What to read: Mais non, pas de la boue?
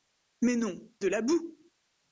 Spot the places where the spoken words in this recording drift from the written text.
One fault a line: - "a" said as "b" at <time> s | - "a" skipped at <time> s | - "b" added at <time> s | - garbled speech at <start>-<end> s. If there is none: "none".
- "pas" skipped at 0.9 s